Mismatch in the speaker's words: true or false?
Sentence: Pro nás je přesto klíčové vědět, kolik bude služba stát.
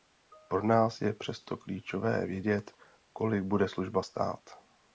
false